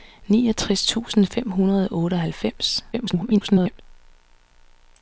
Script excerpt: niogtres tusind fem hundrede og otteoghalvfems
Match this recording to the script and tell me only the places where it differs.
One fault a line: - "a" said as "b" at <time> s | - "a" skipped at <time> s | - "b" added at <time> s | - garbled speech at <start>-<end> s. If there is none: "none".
- garbled speech at 2.9-3.8 s